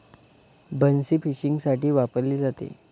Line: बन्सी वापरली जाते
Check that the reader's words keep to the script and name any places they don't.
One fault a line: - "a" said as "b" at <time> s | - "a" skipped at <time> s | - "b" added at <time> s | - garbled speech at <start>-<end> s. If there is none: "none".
- "फिशिंगसाठी" added at 1.2 s